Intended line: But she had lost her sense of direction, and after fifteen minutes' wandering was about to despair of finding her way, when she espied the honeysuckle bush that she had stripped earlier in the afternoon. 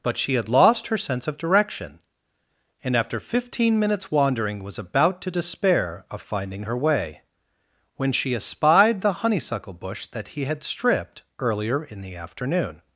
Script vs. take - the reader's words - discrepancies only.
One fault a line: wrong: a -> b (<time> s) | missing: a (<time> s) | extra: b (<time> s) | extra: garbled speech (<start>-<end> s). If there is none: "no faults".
wrong: she -> he (10.3 s)